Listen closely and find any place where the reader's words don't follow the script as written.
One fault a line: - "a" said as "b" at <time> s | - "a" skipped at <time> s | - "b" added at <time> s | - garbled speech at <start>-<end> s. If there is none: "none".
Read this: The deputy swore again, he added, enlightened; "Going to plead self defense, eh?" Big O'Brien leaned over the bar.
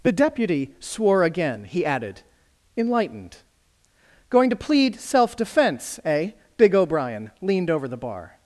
none